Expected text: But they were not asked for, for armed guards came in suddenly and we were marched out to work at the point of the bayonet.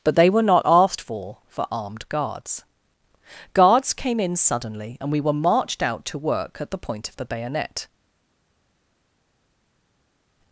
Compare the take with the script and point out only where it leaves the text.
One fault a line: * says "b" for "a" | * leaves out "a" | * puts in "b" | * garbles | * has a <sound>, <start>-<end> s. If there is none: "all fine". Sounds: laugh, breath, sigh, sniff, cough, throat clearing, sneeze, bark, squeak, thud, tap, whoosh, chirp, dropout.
* puts in "guards"